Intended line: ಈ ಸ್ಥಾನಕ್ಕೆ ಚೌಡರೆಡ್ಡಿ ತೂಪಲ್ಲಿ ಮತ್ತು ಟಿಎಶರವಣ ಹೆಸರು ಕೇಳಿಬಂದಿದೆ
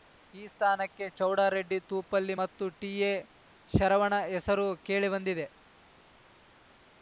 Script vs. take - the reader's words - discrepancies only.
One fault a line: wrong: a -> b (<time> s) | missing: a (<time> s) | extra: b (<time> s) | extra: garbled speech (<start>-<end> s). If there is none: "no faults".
no faults